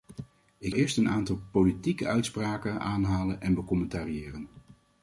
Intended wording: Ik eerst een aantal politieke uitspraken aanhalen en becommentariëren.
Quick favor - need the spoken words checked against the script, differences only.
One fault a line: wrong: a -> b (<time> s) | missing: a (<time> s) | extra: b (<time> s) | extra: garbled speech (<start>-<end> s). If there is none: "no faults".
no faults